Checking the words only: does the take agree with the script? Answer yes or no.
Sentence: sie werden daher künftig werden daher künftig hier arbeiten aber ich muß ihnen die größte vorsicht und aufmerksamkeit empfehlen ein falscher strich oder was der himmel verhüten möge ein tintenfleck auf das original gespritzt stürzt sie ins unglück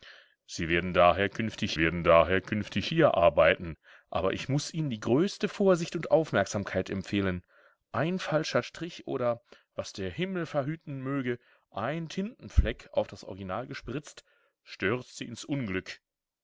yes